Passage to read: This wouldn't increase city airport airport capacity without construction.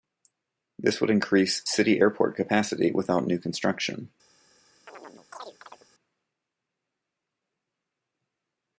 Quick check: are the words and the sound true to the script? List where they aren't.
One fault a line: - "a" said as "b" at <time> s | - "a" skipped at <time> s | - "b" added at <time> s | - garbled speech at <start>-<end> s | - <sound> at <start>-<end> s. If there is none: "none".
- "wouldn't" said as "would" at 1.0 s
- "airport" skipped at 2.4 s
- "new" added at 3.3 s
- chirp at 4.9-5.9 s